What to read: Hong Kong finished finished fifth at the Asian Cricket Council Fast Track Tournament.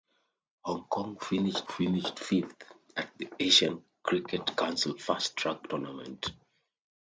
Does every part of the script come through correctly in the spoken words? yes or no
yes